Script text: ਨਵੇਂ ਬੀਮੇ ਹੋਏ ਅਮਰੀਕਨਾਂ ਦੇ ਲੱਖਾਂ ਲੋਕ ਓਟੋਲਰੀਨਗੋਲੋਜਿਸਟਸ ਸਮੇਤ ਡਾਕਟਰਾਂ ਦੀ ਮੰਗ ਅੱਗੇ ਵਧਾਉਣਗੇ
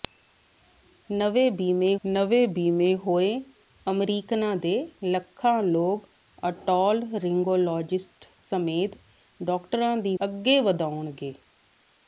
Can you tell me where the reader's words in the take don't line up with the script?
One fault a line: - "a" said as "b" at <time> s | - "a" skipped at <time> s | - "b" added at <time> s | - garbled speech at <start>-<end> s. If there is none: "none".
- "ਨਵੇਂ ਬੀਮੇ" added at 2.0 s
- "ਮੰਗ" skipped at 10.1 s